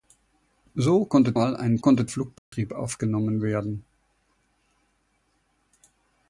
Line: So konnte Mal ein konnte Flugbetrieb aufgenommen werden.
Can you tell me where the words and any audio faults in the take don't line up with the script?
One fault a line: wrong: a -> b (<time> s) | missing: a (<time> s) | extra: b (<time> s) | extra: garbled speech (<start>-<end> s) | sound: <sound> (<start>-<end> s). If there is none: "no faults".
sound: dropout (2.4-2.5 s)